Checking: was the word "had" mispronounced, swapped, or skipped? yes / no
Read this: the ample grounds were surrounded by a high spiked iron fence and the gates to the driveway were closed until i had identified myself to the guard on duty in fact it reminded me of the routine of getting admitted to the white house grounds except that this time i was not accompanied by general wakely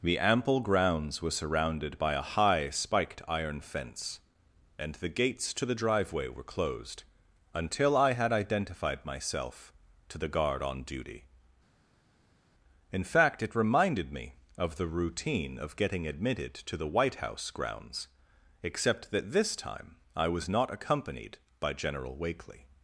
no